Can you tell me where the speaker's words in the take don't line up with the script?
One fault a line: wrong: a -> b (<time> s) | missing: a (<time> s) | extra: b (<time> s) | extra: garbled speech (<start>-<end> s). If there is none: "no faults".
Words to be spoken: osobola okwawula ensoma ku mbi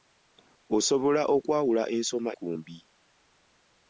no faults